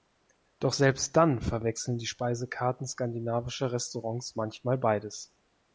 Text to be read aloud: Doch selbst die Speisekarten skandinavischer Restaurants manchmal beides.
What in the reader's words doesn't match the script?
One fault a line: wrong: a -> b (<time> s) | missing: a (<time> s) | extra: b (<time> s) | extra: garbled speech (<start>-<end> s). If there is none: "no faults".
extra: dann verwechseln (1.1 s)